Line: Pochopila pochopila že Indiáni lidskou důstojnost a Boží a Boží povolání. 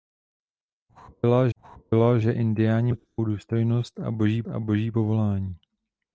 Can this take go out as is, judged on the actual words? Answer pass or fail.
pass